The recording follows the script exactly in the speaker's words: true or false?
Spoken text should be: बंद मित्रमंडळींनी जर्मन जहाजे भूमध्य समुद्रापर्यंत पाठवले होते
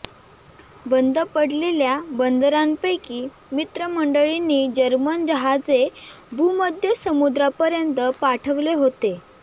false